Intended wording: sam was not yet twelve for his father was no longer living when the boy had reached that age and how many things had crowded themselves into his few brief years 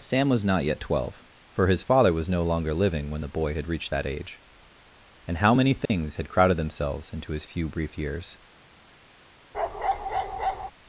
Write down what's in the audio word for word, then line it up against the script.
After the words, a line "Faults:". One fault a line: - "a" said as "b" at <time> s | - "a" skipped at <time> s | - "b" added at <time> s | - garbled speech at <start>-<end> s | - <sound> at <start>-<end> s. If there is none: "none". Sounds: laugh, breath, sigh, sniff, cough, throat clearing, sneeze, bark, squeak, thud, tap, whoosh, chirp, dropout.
sam was not yet twelve for his father was no longer living when the boy had reached that age and how many things had crowded themselves into his few brief years
Faults:
- dropout at 5.9-5.9 s
- bark at 9.5-10.7 s